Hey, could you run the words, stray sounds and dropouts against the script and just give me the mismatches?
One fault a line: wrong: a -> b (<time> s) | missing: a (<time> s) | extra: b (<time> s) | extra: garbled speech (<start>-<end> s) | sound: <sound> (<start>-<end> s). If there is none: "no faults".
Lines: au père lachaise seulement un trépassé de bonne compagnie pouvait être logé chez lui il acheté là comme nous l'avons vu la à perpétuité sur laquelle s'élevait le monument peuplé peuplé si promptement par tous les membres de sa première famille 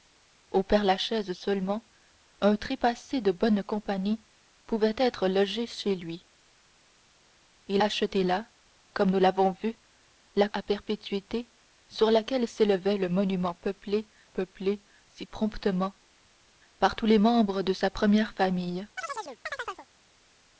sound: chirp (19.0-19.9 s)